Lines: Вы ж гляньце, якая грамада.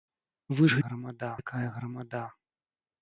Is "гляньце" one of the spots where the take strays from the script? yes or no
yes